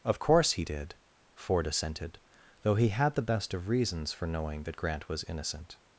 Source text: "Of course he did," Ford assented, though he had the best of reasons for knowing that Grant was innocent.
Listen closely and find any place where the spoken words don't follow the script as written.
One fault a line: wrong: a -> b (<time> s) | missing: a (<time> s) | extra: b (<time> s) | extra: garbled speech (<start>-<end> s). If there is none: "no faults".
no faults